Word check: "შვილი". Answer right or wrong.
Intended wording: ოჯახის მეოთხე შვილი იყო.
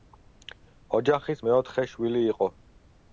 right